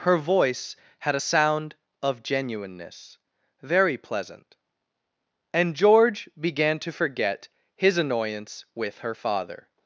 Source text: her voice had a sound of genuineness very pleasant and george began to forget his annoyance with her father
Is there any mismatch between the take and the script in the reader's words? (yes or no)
no